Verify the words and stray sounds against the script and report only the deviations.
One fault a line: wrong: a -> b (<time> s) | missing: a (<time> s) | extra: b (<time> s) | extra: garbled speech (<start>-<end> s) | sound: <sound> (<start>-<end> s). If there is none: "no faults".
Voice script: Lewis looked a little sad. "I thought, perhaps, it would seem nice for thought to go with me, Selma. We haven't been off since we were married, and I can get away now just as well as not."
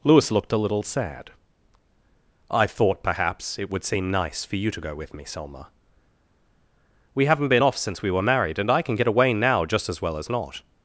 wrong: thought -> you (4.5 s)